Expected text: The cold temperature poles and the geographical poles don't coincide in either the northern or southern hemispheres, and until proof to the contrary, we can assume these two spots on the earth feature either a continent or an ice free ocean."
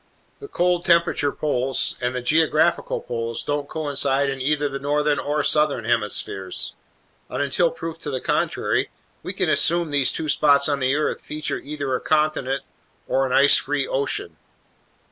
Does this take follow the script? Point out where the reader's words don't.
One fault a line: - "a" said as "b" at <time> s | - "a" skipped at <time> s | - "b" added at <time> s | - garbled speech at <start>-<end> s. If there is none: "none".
none